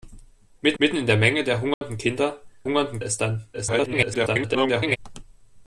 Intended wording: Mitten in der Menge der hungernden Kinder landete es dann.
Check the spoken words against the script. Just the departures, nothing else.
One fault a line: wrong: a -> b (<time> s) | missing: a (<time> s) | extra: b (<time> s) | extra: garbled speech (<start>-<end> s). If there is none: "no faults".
extra: mitten (0.8 s)
wrong: landete -> hungernden (2.6 s)
extra: garbled speech (3.5-5.0 s)